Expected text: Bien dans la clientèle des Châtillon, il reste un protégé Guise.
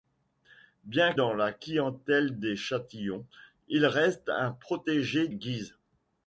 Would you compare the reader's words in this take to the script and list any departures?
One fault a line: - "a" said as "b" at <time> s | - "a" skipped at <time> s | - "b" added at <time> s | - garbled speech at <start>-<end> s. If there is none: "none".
none